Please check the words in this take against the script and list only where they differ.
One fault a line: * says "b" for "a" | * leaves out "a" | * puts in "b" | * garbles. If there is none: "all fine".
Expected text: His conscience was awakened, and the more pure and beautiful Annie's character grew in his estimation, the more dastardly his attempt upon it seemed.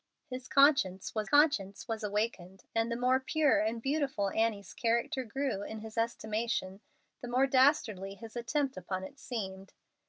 * puts in "conscience was"